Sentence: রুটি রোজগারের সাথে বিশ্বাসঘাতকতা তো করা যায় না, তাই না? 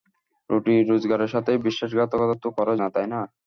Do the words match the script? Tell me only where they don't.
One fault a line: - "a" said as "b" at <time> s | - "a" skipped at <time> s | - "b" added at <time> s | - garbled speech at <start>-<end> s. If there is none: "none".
- "যায়" skipped at 2.7 s